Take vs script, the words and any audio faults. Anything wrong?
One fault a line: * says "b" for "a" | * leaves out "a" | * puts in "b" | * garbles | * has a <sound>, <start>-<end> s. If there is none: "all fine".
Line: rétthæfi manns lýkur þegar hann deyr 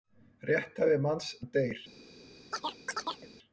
* leaves out "lýkur þegar"
* has a chirp, 2.5-3.3 s